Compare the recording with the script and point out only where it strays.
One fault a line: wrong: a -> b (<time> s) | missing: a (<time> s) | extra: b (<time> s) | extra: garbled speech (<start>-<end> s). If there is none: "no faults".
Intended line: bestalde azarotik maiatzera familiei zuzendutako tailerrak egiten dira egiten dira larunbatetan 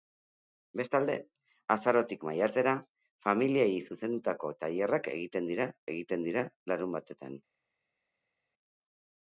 no faults